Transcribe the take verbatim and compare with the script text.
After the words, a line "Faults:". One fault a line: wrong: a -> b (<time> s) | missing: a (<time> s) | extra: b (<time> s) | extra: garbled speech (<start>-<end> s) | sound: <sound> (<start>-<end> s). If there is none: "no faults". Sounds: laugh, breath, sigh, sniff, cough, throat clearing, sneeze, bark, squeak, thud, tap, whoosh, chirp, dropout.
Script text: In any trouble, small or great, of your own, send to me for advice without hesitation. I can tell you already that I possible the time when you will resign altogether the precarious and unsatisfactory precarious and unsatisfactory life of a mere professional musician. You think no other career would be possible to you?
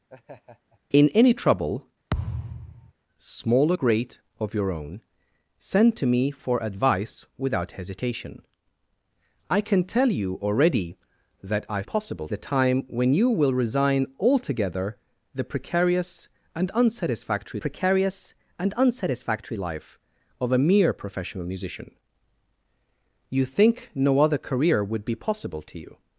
In any trouble, small or great, of your own, send to me for advice without hesitation. I can tell you already that I possible the time when you will resign altogether the precarious and unsatisfactory precarious and unsatisfactory life of a mere professional musician. You think no other career would be possible to you?
Faults:
sound: laugh (0.1-0.8 s)
sound: thud (2.1-2.9 s)